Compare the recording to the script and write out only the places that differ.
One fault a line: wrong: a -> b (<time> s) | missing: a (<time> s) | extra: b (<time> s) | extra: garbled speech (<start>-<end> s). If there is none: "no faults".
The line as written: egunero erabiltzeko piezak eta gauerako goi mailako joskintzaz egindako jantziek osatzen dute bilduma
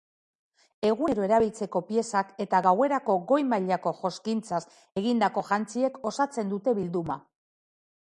no faults